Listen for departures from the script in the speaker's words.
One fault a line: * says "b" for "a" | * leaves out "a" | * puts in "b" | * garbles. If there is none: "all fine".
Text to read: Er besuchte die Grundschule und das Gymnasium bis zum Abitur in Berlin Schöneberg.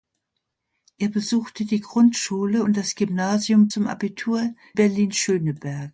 * leaves out "bis"
* leaves out "in"